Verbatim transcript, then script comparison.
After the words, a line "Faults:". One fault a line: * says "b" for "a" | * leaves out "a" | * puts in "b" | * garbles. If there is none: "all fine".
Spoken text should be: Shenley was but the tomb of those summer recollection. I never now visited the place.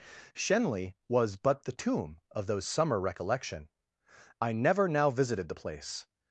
Shenley was but the tomb of those summer recollection. I never now visited the place.
Faults:
all fine